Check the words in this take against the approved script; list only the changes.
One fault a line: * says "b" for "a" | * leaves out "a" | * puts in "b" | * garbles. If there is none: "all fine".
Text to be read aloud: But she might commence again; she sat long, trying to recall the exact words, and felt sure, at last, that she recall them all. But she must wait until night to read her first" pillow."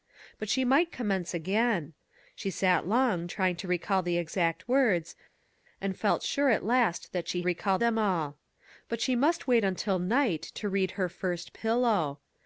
all fine